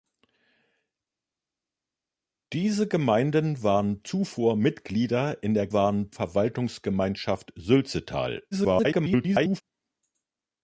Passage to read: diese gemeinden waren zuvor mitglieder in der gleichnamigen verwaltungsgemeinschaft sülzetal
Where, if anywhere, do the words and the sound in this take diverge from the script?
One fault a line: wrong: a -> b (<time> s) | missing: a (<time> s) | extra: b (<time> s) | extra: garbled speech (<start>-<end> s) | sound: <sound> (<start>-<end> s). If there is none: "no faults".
wrong: gleichnamigen -> waren (5.7 s)
extra: garbled speech (8.5-9.6 s)